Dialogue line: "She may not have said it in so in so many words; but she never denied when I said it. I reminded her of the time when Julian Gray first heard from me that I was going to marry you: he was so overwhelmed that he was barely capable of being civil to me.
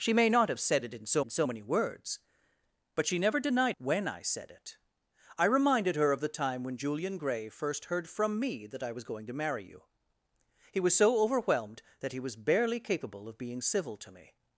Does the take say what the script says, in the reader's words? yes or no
yes